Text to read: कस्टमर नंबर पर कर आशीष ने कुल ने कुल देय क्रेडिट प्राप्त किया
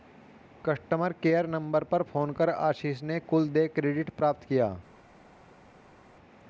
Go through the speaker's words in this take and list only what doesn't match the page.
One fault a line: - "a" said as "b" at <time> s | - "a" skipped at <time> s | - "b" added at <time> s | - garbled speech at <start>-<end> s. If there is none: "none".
- "केयर" added at 1.2 s
- "फोन" added at 2.0 s
- "ने कुल" skipped at 3.5 s